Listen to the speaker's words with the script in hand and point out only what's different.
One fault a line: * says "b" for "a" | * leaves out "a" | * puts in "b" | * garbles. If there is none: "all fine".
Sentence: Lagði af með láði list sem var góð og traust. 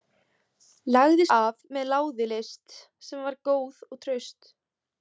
all fine